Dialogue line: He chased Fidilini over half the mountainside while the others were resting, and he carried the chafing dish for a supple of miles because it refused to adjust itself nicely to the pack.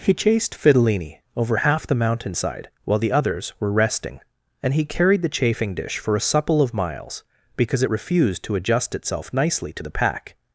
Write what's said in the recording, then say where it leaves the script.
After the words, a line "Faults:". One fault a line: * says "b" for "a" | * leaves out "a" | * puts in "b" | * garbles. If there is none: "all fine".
He chased Fidilini over half the mountainside while the others were resting, and he carried the chafing dish for a supple of miles because it refused to adjust itself nicely to the pack.
Faults:
all fine